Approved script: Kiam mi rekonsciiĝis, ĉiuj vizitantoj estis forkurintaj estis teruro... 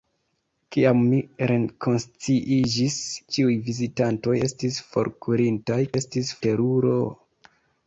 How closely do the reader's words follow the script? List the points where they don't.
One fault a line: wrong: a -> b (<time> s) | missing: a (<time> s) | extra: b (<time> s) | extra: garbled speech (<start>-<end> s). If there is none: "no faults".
no faults